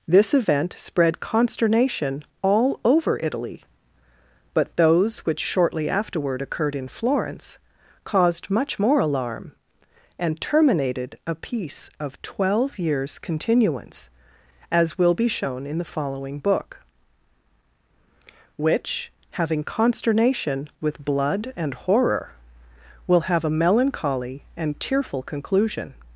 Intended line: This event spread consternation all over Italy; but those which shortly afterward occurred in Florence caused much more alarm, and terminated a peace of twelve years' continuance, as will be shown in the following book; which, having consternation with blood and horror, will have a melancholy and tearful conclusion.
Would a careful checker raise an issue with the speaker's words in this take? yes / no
no